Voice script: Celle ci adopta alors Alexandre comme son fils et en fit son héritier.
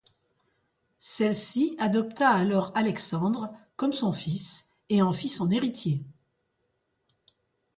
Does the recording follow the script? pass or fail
pass